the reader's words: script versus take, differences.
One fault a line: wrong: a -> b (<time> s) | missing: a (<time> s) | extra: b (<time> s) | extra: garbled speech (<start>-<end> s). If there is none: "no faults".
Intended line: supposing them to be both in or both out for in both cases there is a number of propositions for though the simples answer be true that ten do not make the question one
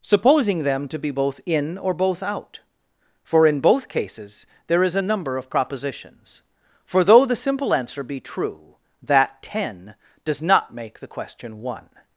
wrong: simples -> simple (7.4 s)
wrong: do -> does (10.2 s)